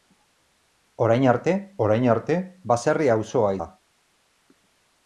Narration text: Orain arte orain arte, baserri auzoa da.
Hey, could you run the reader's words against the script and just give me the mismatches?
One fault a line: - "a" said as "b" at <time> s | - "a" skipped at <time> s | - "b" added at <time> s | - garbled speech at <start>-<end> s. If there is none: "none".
none